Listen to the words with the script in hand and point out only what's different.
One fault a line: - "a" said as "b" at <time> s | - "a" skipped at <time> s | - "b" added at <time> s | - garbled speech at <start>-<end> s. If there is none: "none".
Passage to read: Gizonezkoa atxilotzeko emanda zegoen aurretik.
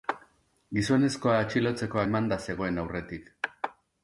none